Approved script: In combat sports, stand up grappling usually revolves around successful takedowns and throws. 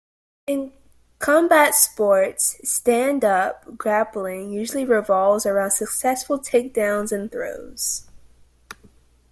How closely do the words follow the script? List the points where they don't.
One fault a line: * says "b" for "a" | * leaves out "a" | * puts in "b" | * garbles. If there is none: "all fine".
all fine